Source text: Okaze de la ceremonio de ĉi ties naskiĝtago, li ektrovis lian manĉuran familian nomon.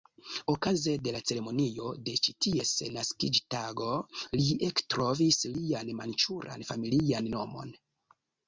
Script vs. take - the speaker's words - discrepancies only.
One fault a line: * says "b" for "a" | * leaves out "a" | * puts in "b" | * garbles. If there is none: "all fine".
all fine